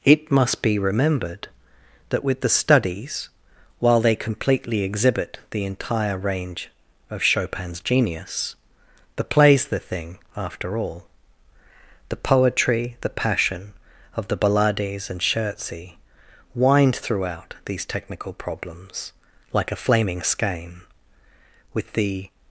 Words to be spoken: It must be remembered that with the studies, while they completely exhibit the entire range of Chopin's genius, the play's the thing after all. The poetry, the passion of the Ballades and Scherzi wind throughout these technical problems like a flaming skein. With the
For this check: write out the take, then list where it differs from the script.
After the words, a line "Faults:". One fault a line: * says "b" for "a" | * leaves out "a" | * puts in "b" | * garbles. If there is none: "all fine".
It must be remembered that with the studies, while they completely exhibit the entire range of Chopin's genius, the play's the thing after all. The poetry, the passion of the Ballades and Scherzi wind throughout these technical problems like a flaming skein. With the
Faults:
all fine